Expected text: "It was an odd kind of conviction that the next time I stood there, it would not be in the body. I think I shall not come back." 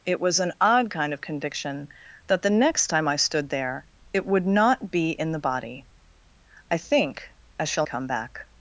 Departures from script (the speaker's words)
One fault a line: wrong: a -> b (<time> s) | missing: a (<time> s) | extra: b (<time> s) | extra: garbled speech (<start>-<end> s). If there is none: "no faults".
missing: not (7.8 s)